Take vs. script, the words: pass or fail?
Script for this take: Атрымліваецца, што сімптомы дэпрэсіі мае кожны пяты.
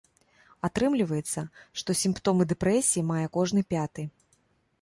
pass